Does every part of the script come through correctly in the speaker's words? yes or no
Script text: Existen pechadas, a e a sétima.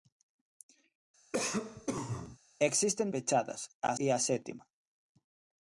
yes